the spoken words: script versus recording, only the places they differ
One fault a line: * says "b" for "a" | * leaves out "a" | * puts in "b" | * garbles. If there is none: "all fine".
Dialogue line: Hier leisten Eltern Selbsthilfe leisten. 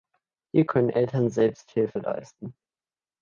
* says "können" for "leisten"